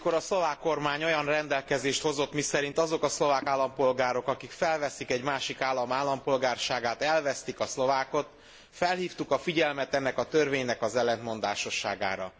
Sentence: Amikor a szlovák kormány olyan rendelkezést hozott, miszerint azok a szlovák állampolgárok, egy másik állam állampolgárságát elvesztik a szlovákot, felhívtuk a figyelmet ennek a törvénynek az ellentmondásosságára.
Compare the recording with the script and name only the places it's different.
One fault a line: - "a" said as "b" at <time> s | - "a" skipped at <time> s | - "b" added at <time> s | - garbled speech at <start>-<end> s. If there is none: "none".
- "akik felveszik" added at 4.3 s